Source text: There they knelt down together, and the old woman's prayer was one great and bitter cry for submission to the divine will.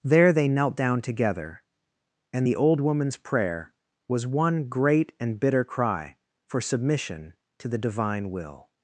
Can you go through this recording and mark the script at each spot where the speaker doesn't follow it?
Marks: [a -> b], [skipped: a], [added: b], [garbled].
There they knelt down together, and the old woman's prayer was one great and bitter cry for submission to the divine will.